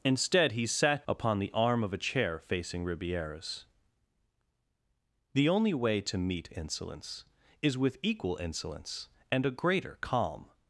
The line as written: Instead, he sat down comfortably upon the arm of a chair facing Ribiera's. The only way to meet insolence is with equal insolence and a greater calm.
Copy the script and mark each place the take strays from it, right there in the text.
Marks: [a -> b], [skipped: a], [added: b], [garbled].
Instead, he sat [skipped: down comfortably] upon the arm of a chair facing Ribiera's. The only way to meet insolence is with equal insolence and a greater calm.